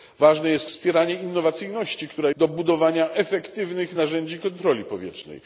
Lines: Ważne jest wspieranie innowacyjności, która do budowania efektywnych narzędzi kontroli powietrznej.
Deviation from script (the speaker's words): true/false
false